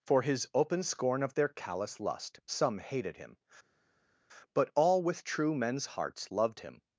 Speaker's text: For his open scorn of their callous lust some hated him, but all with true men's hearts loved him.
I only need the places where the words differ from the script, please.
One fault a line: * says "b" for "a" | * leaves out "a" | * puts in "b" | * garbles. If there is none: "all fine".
all fine